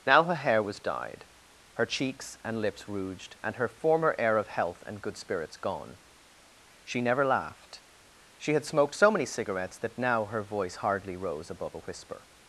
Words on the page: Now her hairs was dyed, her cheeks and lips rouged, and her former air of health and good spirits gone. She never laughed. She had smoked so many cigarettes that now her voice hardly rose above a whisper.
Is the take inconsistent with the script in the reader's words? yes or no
yes